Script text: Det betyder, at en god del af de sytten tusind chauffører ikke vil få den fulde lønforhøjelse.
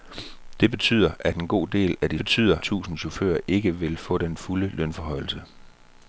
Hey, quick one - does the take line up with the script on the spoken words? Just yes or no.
no